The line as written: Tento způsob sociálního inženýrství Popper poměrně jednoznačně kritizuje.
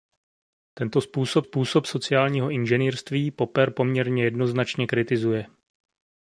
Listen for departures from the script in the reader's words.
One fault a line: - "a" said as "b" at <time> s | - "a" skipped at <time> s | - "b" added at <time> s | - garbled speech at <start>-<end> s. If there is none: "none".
- "způsob" added at 1.4 s